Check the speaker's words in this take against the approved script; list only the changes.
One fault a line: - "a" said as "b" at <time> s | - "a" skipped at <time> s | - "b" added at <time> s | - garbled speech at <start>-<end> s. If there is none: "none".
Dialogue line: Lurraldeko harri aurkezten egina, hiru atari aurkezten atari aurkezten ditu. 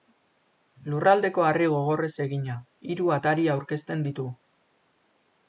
- "aurkezten" said as "gogorrez" at 1.8 s
- "atari aurkezten" skipped at 4.1 s